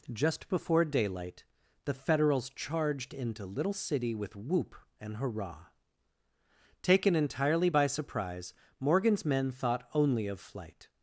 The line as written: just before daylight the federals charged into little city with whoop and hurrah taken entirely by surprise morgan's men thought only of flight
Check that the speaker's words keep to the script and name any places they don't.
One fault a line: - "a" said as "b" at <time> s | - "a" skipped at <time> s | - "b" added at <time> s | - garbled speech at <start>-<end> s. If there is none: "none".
none